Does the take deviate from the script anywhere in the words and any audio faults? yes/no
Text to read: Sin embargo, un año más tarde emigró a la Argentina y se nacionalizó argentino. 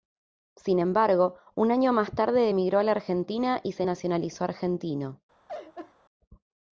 yes